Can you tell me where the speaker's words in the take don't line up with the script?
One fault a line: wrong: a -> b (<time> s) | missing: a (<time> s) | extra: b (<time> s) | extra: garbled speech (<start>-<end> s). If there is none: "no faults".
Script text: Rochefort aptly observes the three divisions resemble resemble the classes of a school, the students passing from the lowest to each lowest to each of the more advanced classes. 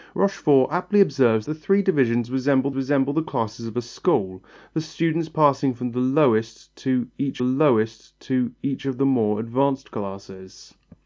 no faults